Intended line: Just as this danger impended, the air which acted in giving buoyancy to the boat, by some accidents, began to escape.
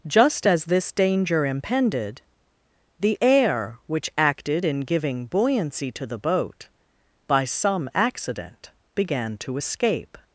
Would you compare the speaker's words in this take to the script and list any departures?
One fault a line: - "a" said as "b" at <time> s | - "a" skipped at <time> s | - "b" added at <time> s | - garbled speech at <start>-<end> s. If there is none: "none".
- "accidents" said as "accident" at 7.9 s